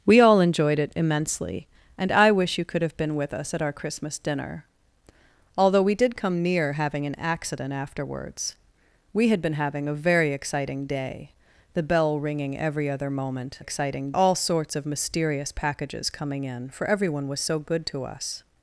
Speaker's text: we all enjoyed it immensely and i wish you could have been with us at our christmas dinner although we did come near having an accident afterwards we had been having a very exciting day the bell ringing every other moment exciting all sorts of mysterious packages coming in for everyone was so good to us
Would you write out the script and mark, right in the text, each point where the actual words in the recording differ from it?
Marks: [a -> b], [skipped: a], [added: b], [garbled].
we all enjoyed it immensely and i wish you could have been with us at our christmas dinner although we did come near having an accident afterwards we had been having a very exciting day the bell ringing every other moment exciting all sorts of mysterious packages coming in for everyone was so good to us